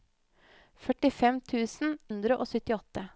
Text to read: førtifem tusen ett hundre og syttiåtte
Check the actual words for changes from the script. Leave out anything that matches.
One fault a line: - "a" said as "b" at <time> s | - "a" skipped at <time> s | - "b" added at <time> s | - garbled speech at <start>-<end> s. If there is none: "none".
- "ett" skipped at 1.9 s